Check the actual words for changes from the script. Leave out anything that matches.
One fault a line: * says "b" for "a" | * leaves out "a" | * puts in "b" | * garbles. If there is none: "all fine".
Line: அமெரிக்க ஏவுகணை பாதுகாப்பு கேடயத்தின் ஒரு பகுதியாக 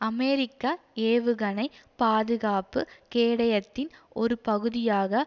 all fine